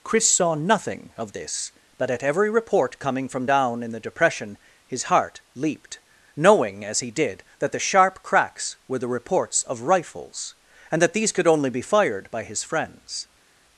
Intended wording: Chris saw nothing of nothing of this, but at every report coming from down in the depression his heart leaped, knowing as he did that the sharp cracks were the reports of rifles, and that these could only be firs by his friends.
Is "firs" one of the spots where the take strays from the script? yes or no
yes